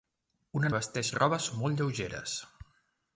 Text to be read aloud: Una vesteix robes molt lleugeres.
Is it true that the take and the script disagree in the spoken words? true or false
false